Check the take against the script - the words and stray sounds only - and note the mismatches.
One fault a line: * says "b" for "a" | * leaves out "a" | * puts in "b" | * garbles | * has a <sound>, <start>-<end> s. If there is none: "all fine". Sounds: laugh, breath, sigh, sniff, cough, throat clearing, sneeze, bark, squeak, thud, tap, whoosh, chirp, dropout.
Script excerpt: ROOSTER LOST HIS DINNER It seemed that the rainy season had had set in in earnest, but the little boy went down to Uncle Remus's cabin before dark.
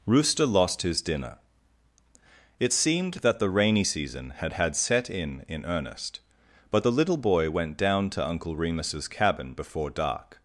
all fine